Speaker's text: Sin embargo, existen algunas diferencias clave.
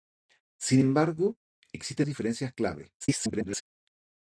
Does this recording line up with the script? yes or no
no